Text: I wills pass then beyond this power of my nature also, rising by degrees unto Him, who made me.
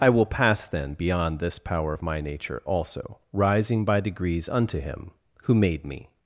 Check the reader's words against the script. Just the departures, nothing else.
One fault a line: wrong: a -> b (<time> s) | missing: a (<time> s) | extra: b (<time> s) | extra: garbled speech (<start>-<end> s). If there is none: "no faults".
wrong: wills -> will (0.1 s)